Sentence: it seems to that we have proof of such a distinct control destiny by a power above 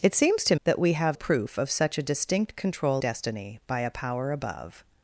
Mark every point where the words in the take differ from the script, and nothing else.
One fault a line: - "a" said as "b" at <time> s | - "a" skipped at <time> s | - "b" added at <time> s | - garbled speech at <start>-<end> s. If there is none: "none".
none